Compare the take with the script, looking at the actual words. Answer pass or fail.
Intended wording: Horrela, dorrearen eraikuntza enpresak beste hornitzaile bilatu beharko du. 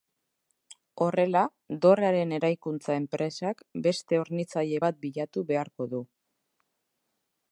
fail